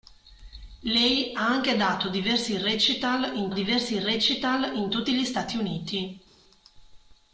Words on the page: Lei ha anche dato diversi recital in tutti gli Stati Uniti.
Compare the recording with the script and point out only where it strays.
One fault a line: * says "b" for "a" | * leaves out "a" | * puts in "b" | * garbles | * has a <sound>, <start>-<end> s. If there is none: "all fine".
* puts in "diversi recital in"